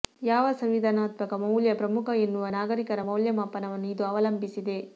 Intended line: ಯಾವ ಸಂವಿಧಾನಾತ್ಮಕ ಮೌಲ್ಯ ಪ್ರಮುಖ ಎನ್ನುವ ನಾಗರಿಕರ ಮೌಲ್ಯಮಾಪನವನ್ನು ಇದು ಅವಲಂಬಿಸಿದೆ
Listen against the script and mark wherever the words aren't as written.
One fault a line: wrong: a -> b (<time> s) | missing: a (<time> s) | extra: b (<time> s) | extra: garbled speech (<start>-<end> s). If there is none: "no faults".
no faults